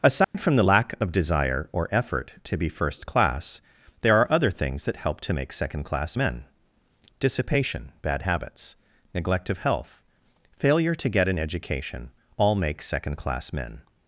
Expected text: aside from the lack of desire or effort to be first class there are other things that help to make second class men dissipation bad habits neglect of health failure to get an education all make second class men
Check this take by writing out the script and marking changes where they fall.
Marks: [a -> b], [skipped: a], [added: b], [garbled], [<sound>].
aside [dropout] from the lack of desire or effort to be first class there are other things that help to make second class men dissipation bad habits neglect of health failure to get an education all make second class men